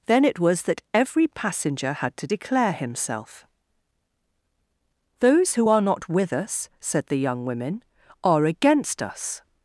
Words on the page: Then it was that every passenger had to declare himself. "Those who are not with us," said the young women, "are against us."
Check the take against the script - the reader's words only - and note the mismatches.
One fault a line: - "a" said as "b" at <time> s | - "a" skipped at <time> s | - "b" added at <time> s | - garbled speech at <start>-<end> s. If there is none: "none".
none